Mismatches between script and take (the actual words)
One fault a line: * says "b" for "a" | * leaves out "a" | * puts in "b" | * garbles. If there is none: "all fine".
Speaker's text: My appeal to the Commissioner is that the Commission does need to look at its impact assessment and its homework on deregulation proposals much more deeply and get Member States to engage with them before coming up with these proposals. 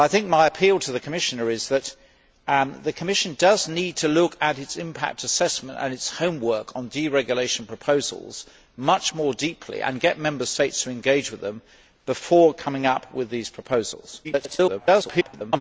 * garbles